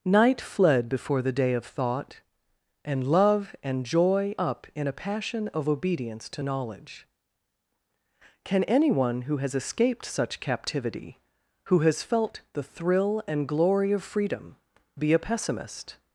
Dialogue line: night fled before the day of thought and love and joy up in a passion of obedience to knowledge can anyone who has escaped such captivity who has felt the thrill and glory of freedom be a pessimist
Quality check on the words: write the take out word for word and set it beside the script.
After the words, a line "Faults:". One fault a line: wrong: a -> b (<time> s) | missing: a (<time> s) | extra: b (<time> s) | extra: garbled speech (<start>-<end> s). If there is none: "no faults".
night fled before the day of thought and love and joy up in a passion of obedience to knowledge can anyone who has escaped such captivity who has felt the thrill and glory of freedom be a pessimist
Faults:
no faults